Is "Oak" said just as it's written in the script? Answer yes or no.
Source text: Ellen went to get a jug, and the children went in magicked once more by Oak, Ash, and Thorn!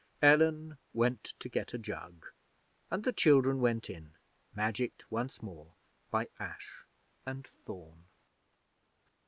no